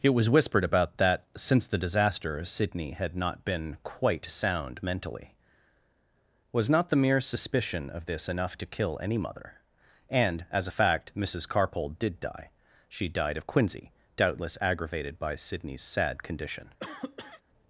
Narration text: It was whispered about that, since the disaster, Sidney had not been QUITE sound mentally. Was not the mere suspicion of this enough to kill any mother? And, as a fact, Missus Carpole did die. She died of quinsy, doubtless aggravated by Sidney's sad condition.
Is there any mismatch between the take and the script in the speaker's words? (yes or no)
no